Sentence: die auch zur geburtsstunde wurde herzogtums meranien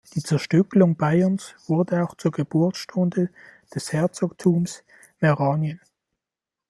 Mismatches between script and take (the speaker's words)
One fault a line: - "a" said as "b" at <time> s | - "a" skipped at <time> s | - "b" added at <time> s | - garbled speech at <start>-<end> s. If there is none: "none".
- "zerstückelung bayerns wurde" added at 0.2 s
- "wurde" said as "des" at 3.8 s